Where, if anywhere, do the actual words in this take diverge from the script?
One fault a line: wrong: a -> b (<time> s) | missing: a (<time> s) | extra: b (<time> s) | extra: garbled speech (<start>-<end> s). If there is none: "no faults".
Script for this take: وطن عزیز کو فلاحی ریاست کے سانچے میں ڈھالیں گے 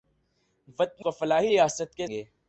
missing: عزیز (1.1 s)
missing: سانچے میں ڈھالیں (2.1 s)